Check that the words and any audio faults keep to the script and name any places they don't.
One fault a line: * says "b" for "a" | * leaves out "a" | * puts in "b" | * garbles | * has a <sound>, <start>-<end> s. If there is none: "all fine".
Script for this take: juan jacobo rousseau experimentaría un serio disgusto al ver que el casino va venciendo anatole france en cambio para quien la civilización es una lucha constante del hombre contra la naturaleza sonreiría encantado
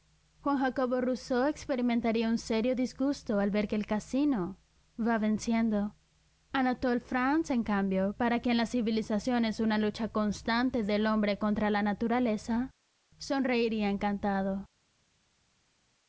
all fine